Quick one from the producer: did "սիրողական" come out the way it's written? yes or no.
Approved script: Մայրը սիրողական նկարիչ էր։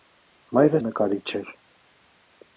no